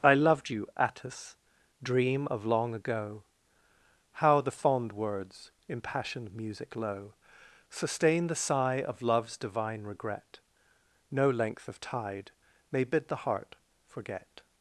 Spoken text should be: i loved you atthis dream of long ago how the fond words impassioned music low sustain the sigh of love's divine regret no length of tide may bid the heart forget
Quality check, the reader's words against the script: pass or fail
pass